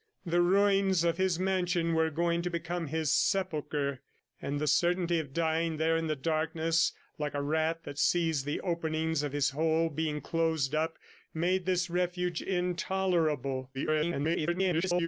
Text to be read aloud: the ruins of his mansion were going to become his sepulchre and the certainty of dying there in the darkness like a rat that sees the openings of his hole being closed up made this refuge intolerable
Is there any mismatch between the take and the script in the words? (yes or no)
yes